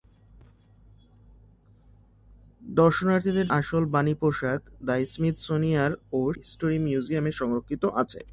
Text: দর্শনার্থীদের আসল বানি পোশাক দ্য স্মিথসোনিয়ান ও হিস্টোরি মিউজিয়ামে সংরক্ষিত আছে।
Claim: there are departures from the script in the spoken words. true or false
false